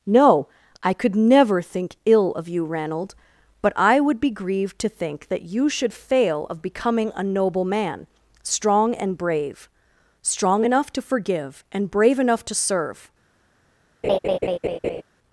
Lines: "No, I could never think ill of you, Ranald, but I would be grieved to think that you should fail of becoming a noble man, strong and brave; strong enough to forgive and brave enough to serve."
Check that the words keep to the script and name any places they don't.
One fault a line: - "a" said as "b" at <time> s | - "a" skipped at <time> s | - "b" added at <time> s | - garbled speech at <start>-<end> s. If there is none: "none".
none